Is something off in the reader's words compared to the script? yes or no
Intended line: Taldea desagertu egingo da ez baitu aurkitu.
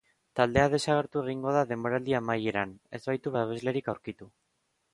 yes